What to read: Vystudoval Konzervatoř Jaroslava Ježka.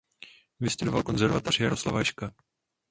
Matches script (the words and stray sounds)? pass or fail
pass